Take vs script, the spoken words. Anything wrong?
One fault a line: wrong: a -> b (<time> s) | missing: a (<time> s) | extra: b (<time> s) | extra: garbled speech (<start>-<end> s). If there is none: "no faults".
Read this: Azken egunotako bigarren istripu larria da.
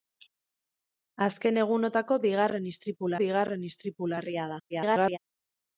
extra: bigarren istripu (3.2 s)
extra: garbled speech (4.7-5.2 s)